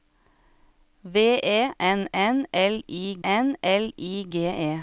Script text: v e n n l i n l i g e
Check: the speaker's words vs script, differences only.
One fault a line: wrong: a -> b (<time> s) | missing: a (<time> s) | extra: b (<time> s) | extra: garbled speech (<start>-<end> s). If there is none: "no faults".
no faults